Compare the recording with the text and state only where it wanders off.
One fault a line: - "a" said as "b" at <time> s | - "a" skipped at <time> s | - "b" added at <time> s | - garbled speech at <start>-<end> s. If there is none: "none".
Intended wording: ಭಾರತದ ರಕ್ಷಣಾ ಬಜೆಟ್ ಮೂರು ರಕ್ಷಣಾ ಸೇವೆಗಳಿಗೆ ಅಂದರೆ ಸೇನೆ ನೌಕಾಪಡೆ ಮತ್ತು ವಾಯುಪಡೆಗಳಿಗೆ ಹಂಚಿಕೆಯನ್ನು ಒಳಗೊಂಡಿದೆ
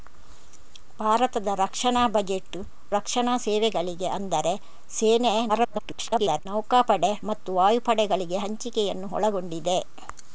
- "ಮೂರು" skipped at 2.6 s
- garbled speech at 5.5-6.5 s